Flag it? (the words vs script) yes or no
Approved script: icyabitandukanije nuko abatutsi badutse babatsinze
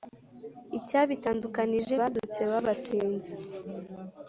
yes